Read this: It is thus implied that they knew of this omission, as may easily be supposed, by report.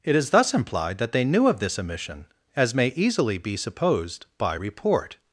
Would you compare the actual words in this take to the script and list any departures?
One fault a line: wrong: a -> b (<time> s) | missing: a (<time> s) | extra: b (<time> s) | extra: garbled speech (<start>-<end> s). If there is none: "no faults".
no faults